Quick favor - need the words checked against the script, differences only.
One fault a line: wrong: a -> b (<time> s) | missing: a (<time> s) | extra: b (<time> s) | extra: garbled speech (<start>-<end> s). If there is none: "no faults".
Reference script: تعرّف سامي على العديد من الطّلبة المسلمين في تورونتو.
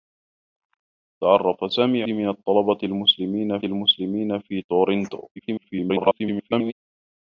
missing: على العديد (2.0 s)
extra: المسلمين (3.6 s)
extra: garbled speech (5.4-6.7 s)